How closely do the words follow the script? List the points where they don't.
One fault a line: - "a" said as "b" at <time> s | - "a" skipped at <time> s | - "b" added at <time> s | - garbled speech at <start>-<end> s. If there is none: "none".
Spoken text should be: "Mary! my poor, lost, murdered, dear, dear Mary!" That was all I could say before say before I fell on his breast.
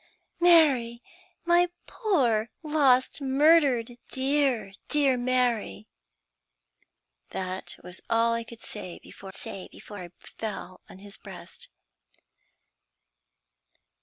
none